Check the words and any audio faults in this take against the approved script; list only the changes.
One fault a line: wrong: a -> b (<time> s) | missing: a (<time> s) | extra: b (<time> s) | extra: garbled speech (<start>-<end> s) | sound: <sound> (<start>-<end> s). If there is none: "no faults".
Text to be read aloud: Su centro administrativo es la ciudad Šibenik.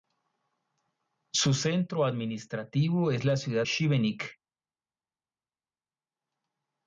no faults